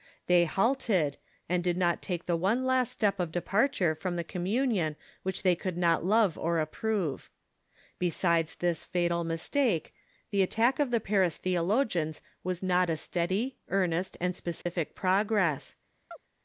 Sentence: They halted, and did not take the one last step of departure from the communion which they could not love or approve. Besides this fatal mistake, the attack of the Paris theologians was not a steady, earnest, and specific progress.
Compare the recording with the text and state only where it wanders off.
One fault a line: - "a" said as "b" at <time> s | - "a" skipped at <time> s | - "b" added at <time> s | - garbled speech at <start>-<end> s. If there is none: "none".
none